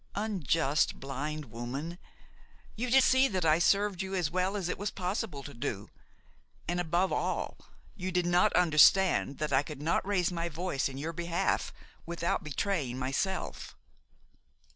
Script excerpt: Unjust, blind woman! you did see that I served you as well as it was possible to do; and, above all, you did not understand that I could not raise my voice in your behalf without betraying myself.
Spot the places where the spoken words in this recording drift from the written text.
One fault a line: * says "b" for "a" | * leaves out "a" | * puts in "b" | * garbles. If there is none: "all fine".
all fine